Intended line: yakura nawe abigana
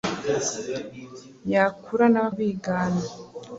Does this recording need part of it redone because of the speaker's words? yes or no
no